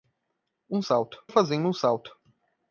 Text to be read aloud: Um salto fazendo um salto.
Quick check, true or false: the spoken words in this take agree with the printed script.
true